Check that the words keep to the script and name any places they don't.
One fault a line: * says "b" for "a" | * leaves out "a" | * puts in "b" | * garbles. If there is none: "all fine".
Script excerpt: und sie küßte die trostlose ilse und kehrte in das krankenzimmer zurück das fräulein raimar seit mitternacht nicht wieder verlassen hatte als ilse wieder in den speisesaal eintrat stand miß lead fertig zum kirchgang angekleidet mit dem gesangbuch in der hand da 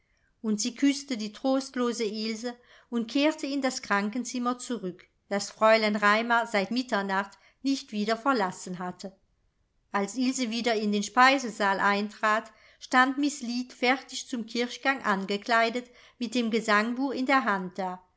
all fine